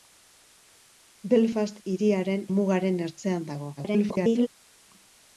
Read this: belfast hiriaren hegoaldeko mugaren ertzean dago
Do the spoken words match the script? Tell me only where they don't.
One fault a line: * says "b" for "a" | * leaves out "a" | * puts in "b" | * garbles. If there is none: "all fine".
* leaves out "hegoaldeko"
* garbles